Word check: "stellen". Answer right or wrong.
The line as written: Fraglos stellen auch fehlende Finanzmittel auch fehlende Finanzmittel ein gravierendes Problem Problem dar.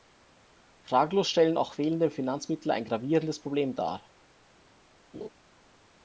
right